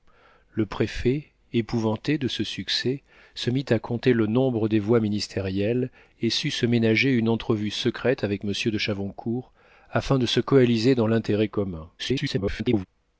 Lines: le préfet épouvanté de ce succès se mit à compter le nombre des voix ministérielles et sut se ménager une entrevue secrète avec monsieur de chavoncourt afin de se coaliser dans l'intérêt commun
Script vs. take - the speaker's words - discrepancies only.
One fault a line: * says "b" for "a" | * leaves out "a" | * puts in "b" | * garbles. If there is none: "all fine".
* garbles